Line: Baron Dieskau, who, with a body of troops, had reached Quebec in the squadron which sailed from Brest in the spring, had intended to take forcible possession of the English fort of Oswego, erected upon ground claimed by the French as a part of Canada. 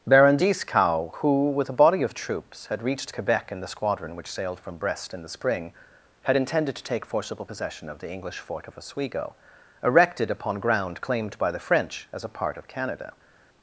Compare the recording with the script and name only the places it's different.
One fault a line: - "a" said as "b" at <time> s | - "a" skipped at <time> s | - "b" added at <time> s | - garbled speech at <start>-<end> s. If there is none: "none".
none